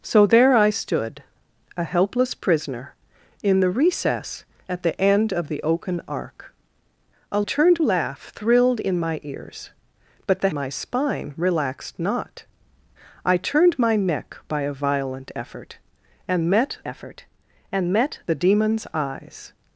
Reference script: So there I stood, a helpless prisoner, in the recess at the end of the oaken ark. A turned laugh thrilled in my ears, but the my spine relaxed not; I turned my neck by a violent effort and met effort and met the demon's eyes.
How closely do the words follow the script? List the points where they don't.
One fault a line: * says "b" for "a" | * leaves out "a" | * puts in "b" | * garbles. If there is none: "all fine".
all fine